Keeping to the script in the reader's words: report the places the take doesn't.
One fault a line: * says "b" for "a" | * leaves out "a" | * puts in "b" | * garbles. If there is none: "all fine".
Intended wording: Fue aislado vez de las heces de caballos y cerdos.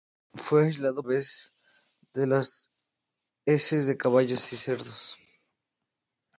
all fine